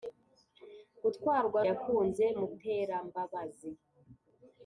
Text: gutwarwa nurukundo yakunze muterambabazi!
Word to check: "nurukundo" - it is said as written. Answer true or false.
false